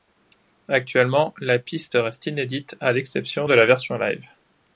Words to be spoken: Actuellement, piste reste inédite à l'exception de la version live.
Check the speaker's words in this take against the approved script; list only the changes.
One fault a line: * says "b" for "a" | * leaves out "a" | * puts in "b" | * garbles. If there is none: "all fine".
* puts in "la"